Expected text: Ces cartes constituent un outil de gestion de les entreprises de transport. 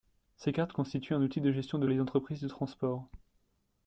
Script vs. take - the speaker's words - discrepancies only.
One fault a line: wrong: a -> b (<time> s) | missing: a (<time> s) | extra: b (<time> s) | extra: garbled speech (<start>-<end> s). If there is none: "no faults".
no faults